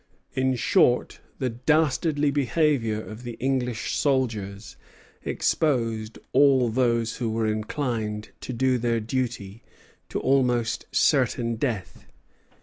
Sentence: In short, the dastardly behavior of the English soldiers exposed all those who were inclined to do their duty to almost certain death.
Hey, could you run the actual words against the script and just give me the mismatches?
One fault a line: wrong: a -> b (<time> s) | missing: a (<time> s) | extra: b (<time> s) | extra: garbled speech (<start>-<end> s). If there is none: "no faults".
no faults